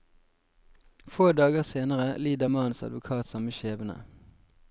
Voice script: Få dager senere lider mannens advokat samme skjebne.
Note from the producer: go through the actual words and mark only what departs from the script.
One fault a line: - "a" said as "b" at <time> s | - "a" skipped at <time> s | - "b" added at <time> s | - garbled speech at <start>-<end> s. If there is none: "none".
none